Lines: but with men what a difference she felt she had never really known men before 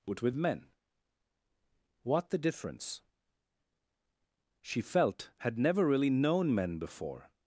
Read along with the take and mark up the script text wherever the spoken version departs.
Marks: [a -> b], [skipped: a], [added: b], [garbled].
but with men what [a -> the] difference she felt [skipped: she] had never really known men before